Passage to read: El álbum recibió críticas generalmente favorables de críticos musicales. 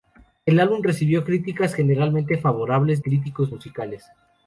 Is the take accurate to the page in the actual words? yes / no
no